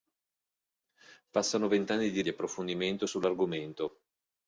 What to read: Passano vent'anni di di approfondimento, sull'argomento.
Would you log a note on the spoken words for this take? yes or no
no